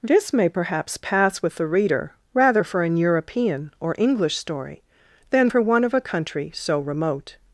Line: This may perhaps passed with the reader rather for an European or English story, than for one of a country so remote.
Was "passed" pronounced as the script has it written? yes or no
no